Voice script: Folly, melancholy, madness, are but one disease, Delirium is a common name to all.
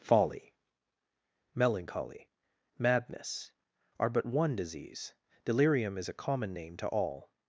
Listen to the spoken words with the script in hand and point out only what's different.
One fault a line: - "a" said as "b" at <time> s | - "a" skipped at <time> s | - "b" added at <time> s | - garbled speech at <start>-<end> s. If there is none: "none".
none